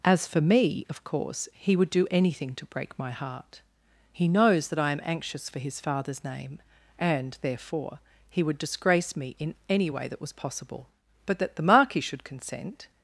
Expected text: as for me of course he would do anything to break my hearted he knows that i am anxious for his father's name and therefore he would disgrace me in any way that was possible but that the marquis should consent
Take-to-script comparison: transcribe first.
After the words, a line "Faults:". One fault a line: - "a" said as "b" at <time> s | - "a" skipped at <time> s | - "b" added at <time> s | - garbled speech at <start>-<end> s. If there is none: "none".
as for me of course he would do anything to break my heart he knows that i am anxious for his father's name and therefore he would disgrace me in any way that was possible but that the marquis should consent
Faults:
- "hearted" said as "heart" at 3.1 s